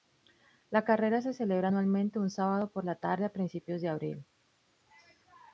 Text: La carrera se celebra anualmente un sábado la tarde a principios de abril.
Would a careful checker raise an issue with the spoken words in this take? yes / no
yes